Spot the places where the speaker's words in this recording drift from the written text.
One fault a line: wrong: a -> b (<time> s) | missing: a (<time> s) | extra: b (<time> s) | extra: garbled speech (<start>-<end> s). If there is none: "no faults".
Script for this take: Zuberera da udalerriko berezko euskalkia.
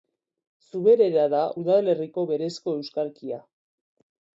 no faults